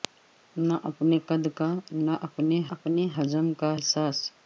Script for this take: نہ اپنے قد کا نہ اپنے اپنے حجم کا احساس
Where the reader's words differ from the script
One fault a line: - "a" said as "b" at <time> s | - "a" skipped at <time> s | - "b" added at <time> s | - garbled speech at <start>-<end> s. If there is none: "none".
none